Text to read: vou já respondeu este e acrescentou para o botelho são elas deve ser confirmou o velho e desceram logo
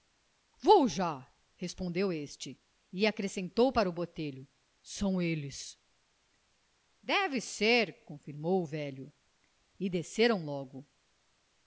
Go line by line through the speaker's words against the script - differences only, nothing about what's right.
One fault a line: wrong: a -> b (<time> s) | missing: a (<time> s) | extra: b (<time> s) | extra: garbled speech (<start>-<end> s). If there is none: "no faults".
wrong: elas -> eles (5.2 s)